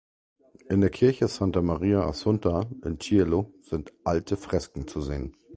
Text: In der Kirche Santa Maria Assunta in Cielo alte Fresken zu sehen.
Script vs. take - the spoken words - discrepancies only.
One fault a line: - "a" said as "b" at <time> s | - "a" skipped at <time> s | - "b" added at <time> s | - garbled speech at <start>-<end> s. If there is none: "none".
- "sind" added at 3.6 s